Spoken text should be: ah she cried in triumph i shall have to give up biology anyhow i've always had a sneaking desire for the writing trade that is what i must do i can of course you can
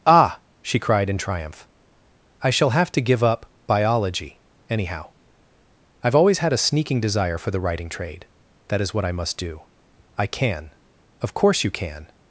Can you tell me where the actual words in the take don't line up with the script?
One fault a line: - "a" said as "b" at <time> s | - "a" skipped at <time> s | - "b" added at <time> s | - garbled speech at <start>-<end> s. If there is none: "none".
none